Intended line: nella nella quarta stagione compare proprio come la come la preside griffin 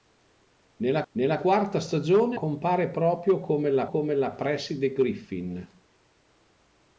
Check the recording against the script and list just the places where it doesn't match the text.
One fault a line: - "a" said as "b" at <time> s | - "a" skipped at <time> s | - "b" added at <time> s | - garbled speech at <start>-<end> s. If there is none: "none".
none